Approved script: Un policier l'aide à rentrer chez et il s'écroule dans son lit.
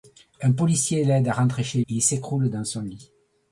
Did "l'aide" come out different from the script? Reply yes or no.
no